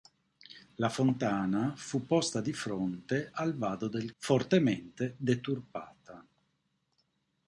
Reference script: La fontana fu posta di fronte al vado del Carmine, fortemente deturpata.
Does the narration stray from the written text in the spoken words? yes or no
yes